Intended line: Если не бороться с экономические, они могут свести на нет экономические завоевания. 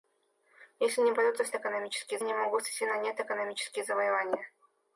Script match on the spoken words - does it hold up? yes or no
yes